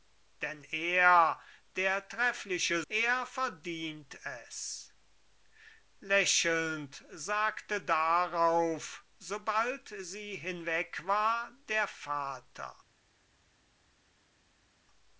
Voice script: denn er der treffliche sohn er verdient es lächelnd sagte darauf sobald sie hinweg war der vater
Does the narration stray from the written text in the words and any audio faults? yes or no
yes